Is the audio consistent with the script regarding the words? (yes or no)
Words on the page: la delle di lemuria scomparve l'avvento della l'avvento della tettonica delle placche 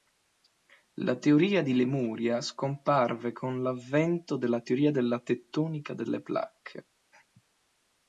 no